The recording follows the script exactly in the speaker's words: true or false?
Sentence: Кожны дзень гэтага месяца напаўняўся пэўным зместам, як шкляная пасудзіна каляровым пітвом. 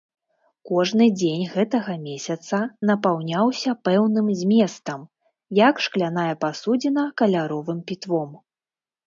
true